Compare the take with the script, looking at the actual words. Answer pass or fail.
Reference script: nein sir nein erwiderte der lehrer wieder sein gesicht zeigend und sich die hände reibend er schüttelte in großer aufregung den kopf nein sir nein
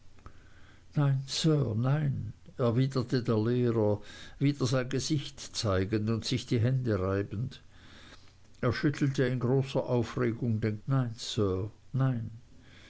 fail